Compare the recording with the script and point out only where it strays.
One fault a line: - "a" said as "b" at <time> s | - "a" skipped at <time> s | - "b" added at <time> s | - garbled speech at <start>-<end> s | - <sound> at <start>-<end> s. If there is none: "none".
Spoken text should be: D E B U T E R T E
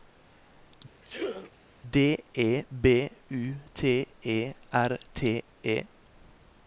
- sneeze at 1.0-1.5 s